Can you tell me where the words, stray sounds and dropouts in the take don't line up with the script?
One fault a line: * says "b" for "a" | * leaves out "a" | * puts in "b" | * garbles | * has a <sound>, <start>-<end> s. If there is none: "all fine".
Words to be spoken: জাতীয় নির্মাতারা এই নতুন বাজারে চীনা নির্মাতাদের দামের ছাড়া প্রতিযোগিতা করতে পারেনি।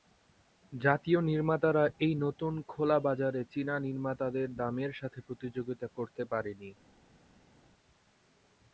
* puts in "খোলা"
* says "সাথে" for "ছাড়া"